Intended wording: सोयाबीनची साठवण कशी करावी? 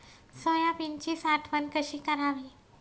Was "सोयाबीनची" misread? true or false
false